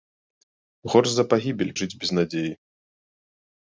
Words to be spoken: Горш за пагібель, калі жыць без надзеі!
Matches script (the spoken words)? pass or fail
fail